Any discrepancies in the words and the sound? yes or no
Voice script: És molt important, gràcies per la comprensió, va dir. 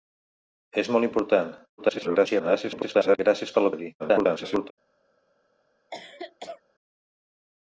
yes